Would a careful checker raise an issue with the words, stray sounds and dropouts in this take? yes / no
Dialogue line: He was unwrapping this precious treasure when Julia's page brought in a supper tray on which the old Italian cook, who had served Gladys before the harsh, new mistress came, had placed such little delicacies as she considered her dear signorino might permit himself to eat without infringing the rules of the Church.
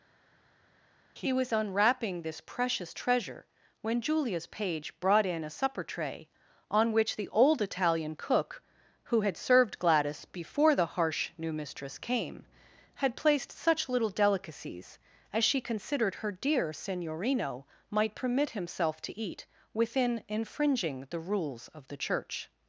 yes